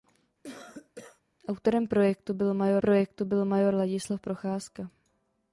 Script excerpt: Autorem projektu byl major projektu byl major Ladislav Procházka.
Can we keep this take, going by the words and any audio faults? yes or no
no